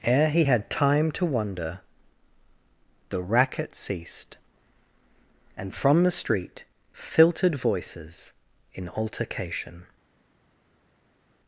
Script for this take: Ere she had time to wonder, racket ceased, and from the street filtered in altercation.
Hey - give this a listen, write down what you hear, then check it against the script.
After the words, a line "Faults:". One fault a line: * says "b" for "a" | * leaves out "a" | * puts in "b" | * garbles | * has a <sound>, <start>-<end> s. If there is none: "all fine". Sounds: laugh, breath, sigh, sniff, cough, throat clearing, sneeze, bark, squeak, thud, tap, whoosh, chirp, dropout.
Ere he had time to wonder, the racket ceased, and from the street filtered voices in altercation.
Faults:
* says "he" for "she"
* puts in "the"
* puts in "voices"